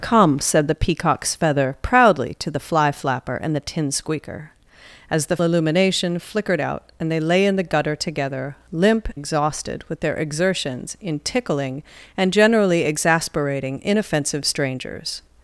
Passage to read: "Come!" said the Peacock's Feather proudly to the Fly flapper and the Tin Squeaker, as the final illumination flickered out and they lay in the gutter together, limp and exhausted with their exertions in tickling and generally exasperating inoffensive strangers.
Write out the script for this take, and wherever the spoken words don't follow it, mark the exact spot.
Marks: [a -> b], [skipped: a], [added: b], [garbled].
"Come!" said the Peacock's Feather proudly to the Fly flapper and the Tin Squeaker, as the [skipped: final] illumination flickered out and they lay in the gutter together, limp [skipped: and] exhausted with their exertions in tickling and generally exasperating inoffensive strangers.